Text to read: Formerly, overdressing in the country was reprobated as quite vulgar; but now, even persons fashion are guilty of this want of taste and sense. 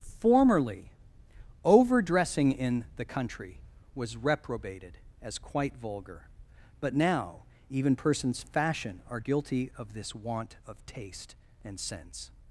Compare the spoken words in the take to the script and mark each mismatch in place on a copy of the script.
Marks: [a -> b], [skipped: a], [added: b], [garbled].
Formerly, overdressing in the country was reprobated as quite vulgar; but now, even persons fashion are guilty of this want of taste and sense.